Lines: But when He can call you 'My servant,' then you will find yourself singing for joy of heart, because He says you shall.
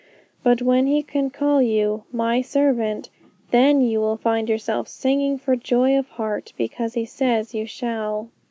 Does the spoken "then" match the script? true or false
true